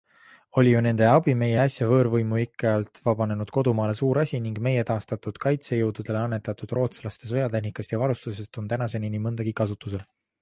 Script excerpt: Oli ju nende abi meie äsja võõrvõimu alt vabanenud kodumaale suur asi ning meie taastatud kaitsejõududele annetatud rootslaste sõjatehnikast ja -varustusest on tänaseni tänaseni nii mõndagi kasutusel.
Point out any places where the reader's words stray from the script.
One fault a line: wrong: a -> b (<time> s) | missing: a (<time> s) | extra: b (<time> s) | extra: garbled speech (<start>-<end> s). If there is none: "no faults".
extra: ikke (2.4 s)
missing: tänaseni (9.1 s)